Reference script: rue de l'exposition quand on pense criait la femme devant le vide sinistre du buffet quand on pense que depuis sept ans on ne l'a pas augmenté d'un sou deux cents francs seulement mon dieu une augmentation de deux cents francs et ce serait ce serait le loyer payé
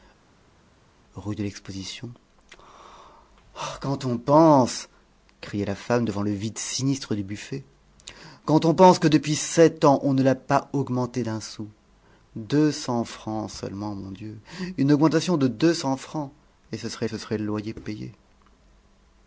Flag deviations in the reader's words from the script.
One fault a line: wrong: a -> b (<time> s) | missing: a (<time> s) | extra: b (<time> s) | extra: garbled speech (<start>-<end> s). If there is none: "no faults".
no faults